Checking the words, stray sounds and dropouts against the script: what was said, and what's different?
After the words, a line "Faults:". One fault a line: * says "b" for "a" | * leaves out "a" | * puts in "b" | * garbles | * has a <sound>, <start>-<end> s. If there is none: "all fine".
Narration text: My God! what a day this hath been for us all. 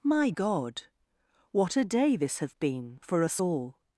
My God! what a day this hath been for us all.
Faults:
all fine